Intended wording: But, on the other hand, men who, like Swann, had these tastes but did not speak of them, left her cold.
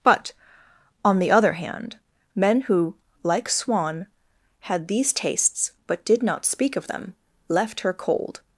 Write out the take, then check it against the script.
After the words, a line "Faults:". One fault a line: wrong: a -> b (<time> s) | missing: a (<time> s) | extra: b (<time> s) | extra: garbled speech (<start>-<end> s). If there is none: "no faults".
But, on the other hand, men who, like Swann, had these tastes but did not speak of them, left her cold.
Faults:
no faults